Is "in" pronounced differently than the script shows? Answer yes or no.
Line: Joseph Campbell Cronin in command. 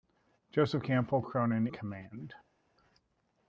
yes